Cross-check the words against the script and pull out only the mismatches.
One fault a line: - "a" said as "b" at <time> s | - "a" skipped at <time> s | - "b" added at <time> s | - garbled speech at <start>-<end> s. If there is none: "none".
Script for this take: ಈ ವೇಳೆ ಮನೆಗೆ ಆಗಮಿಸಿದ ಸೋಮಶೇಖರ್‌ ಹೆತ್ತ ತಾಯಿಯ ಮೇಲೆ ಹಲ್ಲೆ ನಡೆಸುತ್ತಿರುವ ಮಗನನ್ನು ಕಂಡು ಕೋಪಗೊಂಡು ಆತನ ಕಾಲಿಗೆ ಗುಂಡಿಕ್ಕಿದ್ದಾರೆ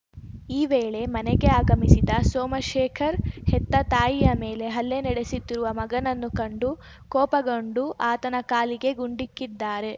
none